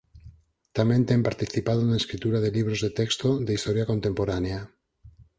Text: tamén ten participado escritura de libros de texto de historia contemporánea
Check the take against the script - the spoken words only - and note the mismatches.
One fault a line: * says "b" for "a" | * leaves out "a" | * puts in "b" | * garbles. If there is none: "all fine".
* puts in "na"